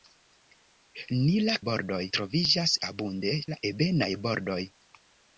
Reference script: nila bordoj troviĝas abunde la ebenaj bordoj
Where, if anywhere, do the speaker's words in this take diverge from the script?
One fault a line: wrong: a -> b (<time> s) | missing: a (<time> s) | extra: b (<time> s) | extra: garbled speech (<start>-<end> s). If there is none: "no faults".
no faults